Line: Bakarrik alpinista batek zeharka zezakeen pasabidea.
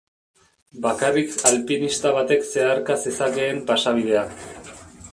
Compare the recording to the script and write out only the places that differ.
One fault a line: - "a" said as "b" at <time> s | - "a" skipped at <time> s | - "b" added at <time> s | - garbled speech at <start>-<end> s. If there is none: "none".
none